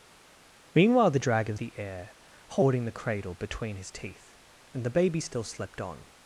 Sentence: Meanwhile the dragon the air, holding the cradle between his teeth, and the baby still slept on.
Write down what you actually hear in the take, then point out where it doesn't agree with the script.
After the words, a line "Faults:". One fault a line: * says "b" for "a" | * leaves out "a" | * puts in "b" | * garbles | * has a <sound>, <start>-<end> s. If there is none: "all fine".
Meanwhile the dragon the air, holding the cradle between his teeth, and the baby still slept on.
Faults:
all fine